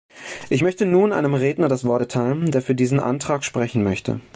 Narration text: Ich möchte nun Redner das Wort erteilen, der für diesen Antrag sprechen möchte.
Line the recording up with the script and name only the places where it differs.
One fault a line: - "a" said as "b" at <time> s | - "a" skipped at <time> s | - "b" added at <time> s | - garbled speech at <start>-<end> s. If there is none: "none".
- "einem" added at 1.1 s